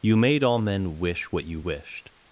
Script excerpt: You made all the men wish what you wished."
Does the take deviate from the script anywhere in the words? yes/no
yes